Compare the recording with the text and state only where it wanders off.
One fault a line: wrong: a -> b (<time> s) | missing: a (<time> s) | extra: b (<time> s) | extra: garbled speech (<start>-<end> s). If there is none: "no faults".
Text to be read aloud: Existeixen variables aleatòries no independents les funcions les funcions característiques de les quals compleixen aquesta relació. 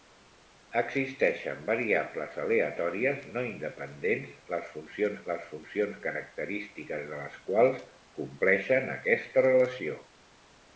no faults